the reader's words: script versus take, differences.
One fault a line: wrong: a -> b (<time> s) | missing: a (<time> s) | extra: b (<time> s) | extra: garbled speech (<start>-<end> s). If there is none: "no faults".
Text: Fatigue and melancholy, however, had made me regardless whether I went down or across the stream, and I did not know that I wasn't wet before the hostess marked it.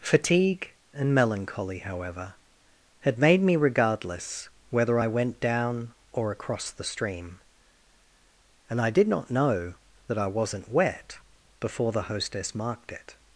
no faults